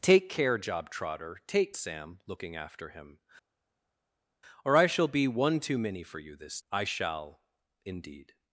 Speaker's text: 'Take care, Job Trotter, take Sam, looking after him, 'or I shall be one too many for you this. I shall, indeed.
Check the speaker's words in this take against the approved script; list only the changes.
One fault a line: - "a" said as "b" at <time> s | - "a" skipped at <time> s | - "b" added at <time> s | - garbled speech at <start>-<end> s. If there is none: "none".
none